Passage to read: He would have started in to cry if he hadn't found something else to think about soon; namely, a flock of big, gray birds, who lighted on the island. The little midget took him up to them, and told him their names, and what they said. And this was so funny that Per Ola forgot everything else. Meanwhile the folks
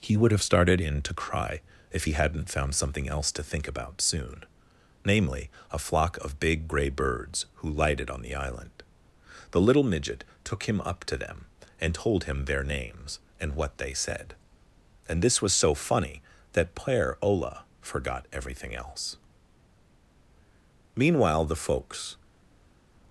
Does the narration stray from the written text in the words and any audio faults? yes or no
no